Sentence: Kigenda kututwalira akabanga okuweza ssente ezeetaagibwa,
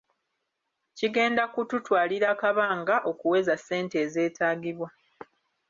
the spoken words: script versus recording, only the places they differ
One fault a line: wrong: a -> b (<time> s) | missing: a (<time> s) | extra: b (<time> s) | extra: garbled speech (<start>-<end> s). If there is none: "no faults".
no faults